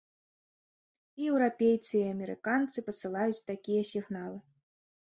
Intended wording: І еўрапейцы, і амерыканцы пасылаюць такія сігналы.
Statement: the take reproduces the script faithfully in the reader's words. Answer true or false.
true